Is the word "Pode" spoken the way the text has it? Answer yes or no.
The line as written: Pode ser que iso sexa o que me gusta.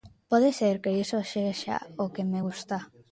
yes